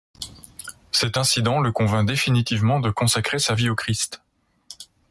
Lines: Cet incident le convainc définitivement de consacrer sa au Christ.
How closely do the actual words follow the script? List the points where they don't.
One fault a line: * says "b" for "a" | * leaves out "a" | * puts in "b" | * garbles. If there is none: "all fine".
* puts in "vie"